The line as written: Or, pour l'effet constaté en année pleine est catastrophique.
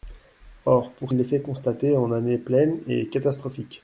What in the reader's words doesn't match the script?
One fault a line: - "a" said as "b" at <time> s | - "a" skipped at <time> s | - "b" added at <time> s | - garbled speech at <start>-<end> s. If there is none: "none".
none